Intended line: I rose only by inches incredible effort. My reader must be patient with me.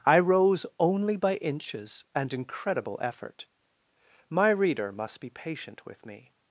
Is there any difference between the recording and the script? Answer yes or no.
yes